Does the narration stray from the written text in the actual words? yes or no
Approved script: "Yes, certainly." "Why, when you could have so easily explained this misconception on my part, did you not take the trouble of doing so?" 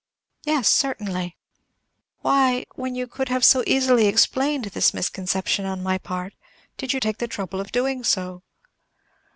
yes